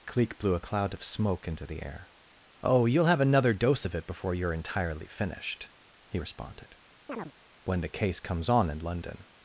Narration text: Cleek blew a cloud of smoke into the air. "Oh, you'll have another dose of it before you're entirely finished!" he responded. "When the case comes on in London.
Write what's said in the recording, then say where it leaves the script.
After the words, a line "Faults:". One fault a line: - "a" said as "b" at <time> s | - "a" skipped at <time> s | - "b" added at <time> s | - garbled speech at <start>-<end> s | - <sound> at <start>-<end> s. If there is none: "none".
Cleek blew a cloud of smoke into the air. "Oh, you'll have another dose of it before you're entirely finished!" he responded. "When the case comes on in London.
Faults:
- chirp at 7.1-7.3 s